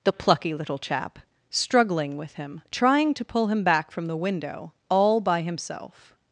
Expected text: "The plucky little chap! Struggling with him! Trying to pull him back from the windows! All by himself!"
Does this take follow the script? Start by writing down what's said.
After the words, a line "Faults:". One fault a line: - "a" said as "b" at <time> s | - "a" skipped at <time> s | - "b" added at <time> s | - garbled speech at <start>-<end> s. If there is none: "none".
"The plucky little chap! Struggling with him! Trying to pull him back from the window! All by himself!"
Faults:
- "windows" said as "window" at 4.2 s